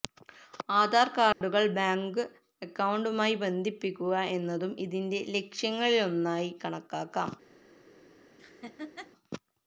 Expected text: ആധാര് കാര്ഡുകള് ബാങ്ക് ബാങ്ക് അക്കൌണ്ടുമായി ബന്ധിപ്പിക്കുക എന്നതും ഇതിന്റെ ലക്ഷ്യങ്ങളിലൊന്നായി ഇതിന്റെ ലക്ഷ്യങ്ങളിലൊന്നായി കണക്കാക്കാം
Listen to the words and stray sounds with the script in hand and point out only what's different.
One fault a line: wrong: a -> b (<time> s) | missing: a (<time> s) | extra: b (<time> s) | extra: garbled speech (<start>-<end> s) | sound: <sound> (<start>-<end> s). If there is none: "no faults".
sound: dropout (1.3-1.4 s)
missing: ബാങ്ക് (2.2 s)
missing: ഇതിന്റെ ലക്ഷ്യങ്ങളിലൊന്നായി (6.5 s)
sound: laugh (8.4-9.1 s)